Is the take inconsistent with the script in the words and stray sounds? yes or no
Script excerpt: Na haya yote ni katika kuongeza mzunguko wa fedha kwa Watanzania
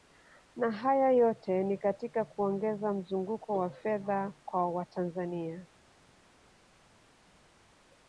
no